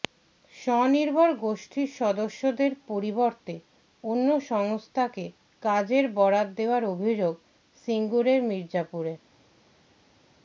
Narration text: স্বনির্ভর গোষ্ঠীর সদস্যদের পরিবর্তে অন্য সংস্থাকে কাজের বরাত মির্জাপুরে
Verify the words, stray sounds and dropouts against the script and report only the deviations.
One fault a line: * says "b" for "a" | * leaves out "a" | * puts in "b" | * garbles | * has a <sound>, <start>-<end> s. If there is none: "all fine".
* puts in "দেওয়ার অভিযোগ সিঙ্গুরের"